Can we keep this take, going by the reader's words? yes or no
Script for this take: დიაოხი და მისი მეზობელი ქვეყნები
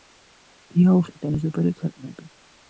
no